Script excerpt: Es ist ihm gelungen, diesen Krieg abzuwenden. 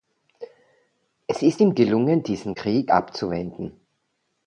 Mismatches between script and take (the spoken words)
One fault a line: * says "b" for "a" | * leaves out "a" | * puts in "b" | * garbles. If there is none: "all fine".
all fine